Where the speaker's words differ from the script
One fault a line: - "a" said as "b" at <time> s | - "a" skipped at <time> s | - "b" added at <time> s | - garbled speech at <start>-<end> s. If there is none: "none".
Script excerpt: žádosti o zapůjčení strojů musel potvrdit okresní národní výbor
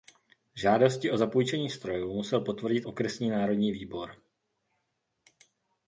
none